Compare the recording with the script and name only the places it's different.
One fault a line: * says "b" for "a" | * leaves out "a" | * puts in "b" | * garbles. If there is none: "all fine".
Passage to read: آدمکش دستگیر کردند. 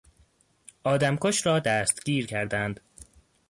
* puts in "را"